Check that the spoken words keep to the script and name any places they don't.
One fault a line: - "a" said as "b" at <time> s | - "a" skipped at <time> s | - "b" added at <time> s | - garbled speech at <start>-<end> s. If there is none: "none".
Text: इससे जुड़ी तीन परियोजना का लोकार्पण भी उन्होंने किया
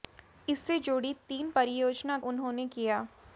- "का लोकार्पण भी" skipped at 2.2 s